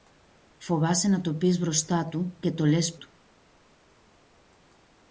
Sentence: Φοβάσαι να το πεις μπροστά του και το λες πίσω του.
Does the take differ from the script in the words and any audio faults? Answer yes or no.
yes